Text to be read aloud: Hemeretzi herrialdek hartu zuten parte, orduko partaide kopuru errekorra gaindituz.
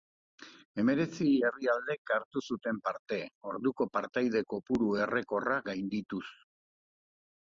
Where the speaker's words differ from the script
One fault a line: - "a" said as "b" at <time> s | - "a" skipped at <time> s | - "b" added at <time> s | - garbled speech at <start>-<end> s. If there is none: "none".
none